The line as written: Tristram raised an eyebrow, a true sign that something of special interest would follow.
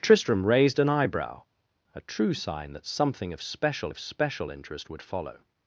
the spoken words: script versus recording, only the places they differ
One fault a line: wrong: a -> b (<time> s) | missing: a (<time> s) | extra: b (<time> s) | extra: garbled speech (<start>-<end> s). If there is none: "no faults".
extra: of special (3.9 s)